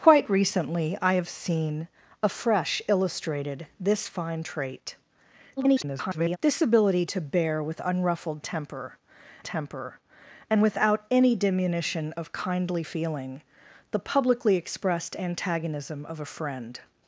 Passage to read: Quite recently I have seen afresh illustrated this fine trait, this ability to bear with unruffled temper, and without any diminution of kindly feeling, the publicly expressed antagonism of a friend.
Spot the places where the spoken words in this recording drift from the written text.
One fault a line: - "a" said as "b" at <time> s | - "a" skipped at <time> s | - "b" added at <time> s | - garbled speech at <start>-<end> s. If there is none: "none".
- garbled speech at 5.6-6.4 s
- "temper" added at 9.4 s